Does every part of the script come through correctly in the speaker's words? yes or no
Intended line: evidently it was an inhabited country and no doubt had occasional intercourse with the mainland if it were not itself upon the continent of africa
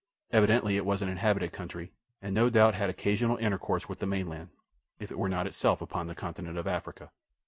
yes